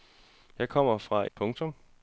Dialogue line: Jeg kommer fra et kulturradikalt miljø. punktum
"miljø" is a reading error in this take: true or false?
true